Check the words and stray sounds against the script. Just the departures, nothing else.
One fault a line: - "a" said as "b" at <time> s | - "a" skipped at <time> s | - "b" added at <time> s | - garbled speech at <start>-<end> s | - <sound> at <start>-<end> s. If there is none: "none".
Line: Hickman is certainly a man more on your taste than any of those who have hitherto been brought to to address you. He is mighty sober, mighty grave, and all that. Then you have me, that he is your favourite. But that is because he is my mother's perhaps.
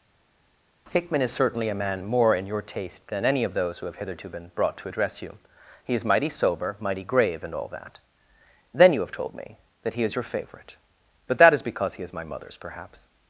- "on" said as "in" at 2.3 s
- "to" skipped at 4.9 s
- "told" added at 9.1 s